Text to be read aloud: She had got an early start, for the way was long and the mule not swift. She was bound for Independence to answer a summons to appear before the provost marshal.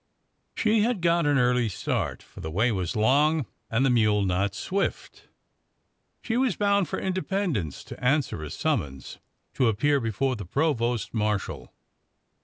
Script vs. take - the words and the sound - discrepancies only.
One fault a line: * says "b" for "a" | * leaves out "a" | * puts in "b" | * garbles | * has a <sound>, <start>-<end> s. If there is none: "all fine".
all fine